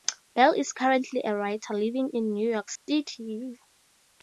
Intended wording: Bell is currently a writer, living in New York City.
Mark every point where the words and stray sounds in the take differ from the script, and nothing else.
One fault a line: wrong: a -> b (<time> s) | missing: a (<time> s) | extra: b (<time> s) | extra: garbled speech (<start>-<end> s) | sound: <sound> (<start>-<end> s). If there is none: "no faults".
sound: dropout (2.8-2.9 s)